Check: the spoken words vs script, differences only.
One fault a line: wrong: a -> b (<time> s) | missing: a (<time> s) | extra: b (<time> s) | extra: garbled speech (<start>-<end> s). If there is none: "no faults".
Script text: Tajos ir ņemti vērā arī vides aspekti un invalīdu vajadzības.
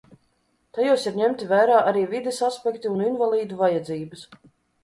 no faults